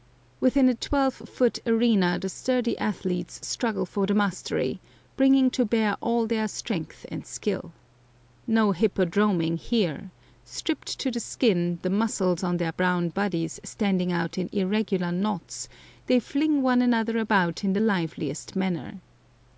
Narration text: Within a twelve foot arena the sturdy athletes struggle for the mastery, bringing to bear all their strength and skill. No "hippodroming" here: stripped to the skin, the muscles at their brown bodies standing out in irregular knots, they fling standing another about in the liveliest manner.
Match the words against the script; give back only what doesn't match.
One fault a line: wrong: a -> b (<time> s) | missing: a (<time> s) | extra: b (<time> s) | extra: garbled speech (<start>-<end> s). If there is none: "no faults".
wrong: at -> on (12.4 s)
wrong: standing -> one (16.6 s)